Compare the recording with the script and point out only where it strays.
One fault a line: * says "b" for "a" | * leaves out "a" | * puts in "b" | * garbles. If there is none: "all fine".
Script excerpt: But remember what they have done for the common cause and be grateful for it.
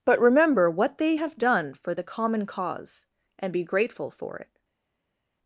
all fine